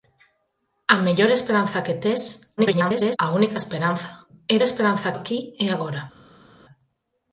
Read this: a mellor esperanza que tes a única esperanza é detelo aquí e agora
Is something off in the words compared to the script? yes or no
yes